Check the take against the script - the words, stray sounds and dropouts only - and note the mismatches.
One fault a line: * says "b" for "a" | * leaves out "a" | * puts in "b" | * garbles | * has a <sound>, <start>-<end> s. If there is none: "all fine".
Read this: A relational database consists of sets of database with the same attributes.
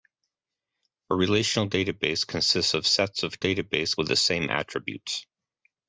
all fine